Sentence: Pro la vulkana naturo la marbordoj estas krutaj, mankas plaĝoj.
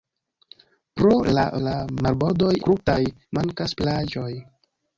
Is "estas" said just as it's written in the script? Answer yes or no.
no